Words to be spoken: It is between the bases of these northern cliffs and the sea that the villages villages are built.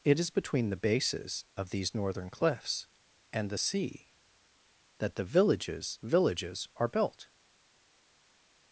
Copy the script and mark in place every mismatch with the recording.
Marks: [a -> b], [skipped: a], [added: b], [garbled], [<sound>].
It is between the bases of these northern cliffs and the sea that the villages villages are built.